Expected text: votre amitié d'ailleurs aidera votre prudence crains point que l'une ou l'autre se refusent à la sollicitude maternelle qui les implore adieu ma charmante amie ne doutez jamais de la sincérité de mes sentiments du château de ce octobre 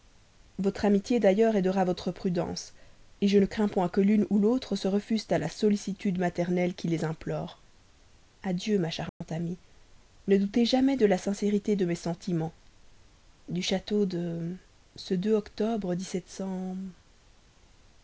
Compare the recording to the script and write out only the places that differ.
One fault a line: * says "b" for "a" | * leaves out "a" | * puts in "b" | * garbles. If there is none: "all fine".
* puts in "je ne"